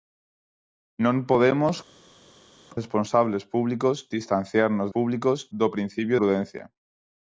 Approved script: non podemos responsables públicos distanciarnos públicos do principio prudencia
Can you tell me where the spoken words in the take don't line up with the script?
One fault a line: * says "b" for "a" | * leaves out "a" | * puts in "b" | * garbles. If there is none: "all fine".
all fine